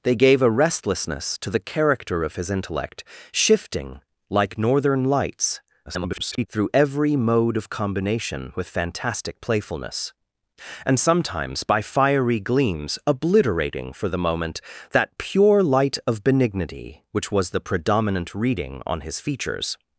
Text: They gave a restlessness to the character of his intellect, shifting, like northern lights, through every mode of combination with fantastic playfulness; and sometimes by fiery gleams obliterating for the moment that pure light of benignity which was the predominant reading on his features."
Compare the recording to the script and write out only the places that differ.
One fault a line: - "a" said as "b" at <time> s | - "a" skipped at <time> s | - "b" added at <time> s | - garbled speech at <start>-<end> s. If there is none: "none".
- garbled speech at 5.9-6.5 s